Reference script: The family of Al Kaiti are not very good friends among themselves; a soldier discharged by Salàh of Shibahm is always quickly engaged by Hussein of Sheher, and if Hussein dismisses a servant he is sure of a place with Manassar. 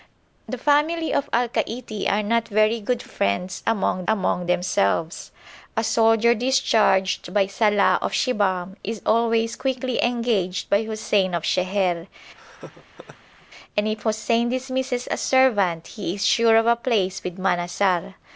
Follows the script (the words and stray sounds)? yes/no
no